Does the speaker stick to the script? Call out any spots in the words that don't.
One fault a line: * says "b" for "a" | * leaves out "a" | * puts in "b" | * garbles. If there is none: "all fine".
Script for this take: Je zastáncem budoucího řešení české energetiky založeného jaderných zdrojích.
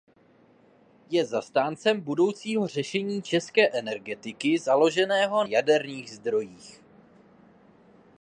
all fine